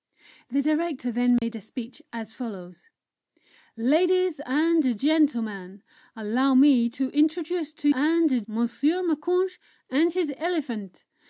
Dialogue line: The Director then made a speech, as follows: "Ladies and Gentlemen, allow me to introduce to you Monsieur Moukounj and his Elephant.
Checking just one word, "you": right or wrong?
wrong